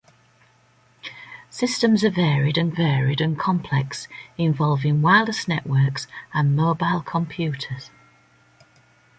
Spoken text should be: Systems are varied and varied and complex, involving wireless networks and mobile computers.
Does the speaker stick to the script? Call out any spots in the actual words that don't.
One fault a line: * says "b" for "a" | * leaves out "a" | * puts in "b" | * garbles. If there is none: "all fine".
all fine